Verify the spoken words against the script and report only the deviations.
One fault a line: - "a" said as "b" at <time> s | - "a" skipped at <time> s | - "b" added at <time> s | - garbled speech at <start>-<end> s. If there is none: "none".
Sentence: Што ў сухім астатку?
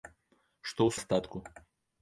- "сухім" skipped at 0.9 s